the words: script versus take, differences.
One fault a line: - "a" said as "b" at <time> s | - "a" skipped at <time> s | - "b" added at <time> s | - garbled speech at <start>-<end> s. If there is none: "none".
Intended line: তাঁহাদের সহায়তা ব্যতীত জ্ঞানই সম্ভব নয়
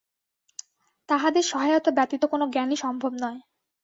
- "কোন" added at 2.2 s